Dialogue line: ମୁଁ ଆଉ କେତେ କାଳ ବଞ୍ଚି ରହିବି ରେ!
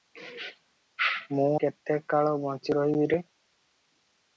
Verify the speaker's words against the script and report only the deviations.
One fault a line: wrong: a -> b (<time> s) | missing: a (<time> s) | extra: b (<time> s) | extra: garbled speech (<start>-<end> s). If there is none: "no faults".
missing: ଆଉ (1.5 s)